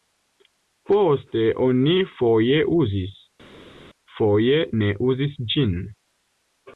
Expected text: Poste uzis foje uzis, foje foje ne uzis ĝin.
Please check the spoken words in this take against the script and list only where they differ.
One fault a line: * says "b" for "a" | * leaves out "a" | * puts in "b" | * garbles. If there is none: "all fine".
* says "oni" for "uzis"
* leaves out "foje"